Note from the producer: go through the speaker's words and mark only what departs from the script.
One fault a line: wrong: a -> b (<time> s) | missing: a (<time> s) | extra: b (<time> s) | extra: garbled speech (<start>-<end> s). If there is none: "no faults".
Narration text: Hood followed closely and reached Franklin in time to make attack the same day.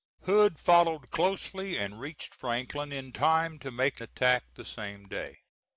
no faults